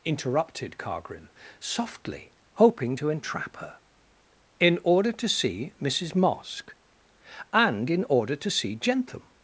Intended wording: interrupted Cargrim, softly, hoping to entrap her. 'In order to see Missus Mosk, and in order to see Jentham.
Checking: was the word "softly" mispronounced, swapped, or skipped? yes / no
no